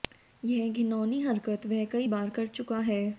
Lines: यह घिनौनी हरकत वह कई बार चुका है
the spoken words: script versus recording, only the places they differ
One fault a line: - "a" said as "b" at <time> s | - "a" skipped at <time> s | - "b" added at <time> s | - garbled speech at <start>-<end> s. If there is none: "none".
- "कर" added at 2.3 s